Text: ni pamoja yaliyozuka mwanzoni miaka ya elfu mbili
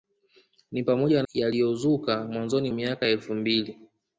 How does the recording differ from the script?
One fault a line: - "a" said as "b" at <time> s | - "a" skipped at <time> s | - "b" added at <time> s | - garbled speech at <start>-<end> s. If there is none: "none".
none